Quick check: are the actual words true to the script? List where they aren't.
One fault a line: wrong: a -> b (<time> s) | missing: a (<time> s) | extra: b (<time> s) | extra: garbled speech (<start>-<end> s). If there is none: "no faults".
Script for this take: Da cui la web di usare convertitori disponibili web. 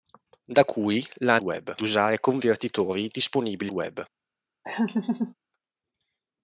no faults